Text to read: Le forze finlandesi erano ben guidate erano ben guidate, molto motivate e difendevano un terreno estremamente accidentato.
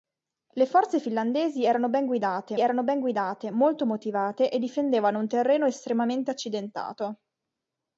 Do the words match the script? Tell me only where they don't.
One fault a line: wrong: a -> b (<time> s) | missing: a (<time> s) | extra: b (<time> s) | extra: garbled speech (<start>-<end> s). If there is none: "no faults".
no faults